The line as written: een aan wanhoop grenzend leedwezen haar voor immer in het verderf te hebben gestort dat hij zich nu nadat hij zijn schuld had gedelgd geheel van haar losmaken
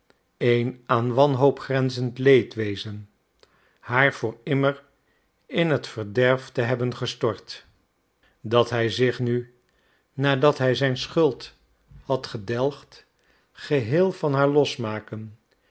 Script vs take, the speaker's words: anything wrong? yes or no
no